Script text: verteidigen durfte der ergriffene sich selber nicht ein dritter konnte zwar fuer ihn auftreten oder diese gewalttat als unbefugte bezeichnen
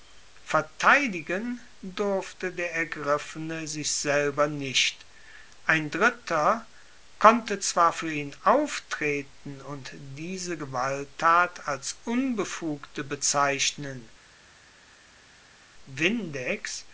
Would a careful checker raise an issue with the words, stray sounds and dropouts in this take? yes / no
yes